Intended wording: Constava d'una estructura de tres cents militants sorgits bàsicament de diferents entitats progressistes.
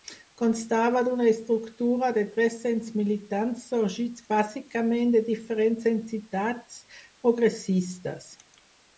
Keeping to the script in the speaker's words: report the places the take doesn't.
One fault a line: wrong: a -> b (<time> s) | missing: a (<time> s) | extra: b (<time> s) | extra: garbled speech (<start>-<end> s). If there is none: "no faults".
no faults